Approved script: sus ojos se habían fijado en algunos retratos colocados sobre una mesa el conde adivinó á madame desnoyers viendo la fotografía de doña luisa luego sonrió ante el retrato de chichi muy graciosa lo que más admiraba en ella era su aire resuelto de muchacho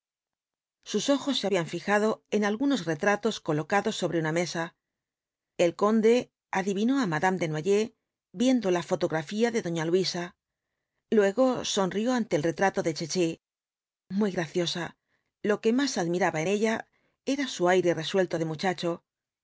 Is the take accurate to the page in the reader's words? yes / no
yes